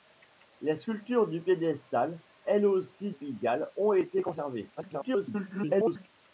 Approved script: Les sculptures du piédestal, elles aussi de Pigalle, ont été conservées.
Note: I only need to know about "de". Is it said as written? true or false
false